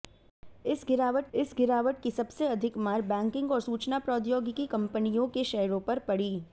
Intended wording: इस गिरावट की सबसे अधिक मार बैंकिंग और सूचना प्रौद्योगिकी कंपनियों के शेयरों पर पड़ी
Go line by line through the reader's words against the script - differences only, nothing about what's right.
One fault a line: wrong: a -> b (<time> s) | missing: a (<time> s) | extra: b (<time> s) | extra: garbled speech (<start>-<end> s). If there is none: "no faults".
extra: इस गिरावट (1.3 s)